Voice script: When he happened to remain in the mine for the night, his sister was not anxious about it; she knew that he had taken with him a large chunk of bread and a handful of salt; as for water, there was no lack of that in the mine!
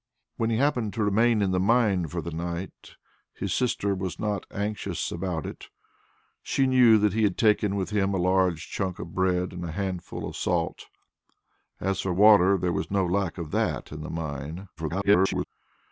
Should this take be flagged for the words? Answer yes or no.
yes